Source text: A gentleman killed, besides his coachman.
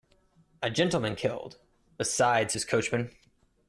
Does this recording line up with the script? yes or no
yes